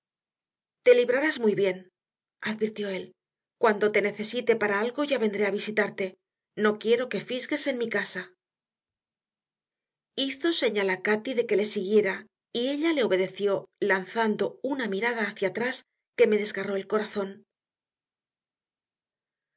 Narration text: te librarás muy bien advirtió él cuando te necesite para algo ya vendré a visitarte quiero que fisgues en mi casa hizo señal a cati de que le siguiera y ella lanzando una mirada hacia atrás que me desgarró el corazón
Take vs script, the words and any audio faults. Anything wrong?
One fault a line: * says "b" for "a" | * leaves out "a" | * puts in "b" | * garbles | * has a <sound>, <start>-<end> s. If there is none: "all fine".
* puts in "no"
* puts in "le obedeció"